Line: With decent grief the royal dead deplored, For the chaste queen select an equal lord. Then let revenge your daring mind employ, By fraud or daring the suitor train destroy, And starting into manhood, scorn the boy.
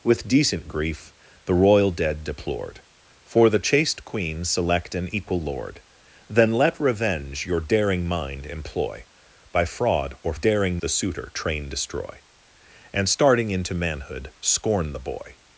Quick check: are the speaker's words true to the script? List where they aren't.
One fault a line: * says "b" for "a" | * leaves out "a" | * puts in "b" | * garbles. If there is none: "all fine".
all fine